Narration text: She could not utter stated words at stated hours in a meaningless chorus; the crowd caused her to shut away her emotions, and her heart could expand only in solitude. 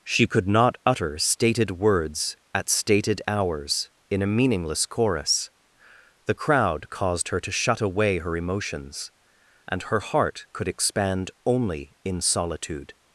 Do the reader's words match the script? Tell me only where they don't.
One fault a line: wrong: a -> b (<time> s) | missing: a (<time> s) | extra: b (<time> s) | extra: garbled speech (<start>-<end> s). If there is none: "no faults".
no faults